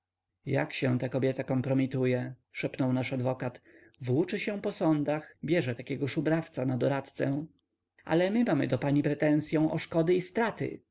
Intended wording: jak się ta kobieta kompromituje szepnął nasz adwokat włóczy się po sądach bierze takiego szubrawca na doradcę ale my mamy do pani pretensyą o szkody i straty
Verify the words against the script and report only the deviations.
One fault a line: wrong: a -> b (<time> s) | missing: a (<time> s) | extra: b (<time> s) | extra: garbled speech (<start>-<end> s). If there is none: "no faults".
no faults